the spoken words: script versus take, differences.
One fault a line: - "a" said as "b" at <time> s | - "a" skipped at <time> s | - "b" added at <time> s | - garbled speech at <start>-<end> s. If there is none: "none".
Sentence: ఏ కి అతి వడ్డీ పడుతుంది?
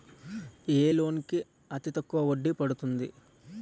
- "లోన్" added at 0.9 s
- "తక్కువ" added at 1.9 s